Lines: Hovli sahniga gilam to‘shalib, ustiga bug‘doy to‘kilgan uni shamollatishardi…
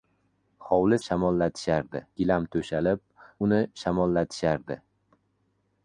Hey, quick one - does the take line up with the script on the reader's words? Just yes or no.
no